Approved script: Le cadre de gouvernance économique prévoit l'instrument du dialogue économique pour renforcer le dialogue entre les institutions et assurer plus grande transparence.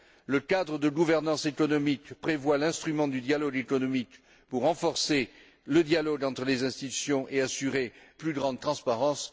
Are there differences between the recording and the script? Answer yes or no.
no